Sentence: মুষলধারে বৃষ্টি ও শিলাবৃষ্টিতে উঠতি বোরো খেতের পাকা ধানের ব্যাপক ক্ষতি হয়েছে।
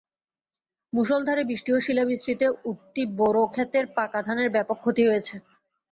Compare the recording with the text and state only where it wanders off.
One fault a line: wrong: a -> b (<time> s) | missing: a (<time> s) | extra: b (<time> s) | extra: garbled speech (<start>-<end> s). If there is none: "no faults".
no faults